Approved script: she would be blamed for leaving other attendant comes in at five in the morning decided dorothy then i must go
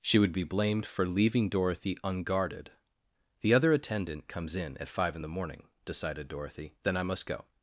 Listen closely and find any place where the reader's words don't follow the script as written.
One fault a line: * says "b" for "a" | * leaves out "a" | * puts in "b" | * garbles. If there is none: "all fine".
* puts in "dorothy unguarded the"